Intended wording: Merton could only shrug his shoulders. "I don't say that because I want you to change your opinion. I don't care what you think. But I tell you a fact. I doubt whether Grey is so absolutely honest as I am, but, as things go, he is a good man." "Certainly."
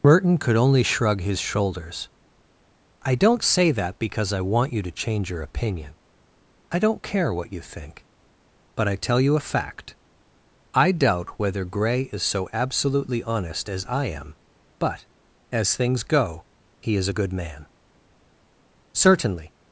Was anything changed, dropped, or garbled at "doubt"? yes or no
no